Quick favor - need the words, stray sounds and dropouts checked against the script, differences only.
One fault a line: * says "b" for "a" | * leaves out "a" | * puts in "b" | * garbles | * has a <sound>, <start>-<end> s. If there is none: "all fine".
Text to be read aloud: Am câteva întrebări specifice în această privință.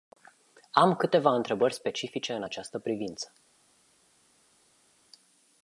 all fine